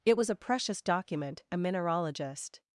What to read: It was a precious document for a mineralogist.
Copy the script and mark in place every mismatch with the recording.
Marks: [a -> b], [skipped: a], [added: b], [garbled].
It was a precious document [skipped: for] a mineralogist.